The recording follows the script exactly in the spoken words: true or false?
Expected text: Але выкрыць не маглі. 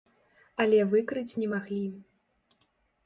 true